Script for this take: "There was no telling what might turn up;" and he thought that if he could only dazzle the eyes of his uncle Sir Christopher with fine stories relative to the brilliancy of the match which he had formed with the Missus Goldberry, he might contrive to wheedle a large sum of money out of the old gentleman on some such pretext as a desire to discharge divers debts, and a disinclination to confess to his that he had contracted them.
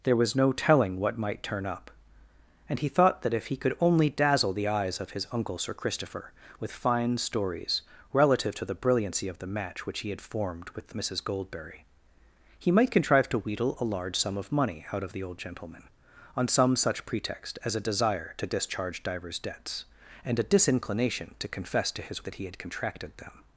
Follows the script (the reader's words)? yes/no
yes